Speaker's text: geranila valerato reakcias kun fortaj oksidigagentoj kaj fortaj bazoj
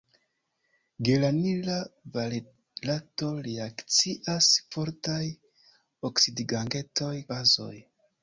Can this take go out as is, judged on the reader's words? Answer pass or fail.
fail